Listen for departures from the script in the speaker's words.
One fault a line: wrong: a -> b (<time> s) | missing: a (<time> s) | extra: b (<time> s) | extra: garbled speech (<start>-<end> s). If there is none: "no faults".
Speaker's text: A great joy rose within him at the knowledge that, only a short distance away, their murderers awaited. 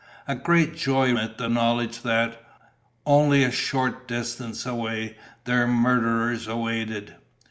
missing: rose within him (1.1 s)